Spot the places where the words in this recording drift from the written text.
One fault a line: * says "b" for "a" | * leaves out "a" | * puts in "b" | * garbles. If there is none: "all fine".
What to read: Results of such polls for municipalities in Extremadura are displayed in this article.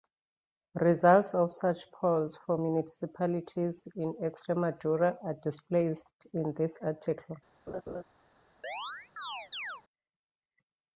all fine